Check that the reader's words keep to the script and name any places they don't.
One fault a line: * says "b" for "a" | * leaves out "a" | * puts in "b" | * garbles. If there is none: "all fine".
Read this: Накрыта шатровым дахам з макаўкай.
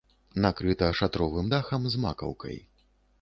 all fine